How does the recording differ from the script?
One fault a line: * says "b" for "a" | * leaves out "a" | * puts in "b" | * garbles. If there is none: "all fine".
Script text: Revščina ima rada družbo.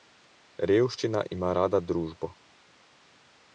all fine